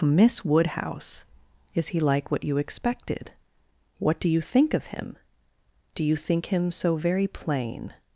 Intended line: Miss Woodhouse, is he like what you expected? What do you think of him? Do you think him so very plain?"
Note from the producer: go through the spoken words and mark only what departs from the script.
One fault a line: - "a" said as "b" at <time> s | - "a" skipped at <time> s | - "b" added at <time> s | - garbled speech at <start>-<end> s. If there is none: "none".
none